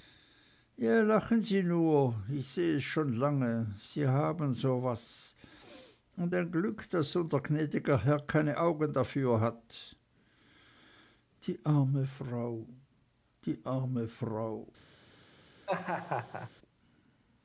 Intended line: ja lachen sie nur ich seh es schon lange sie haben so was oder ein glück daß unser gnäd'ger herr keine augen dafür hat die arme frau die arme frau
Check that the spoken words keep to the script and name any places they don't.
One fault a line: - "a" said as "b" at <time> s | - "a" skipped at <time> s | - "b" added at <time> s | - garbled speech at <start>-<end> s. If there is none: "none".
- "oder" said as "und" at 6.2 s